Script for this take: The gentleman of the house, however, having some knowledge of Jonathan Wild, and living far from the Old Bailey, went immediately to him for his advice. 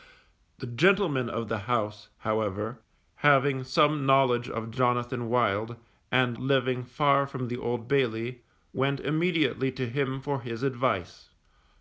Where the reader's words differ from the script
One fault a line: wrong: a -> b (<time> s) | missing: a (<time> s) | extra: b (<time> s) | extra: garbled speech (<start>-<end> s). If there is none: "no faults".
no faults